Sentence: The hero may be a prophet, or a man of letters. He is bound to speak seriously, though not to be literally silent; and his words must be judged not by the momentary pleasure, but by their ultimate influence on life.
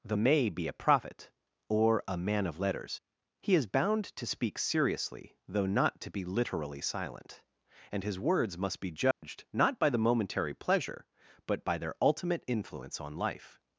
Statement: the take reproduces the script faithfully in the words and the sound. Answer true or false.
false